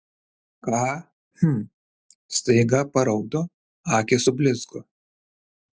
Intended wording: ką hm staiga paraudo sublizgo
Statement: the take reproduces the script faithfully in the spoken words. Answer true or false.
false